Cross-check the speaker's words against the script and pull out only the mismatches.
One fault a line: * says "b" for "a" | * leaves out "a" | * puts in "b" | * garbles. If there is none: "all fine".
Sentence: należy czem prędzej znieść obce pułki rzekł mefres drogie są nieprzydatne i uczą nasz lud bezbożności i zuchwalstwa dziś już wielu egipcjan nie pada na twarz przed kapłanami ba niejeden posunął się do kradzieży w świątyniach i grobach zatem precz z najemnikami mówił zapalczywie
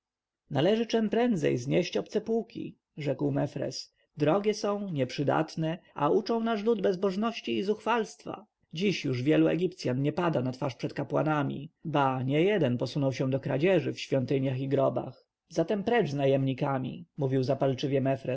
* says "a" for "i"